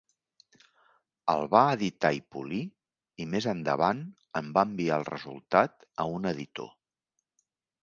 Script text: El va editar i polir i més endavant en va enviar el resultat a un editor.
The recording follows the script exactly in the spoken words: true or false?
true